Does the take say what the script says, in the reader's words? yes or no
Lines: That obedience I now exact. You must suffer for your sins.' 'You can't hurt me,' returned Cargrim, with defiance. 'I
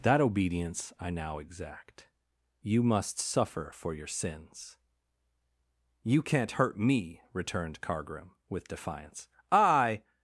yes